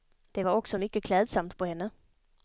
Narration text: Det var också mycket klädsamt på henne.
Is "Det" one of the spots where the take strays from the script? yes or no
no